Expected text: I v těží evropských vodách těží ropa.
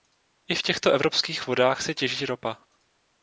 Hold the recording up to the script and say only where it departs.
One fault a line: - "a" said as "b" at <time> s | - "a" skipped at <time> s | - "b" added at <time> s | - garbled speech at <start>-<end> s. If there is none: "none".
- "těží" said as "těchto" at 0.6 s
- "se" added at 1.8 s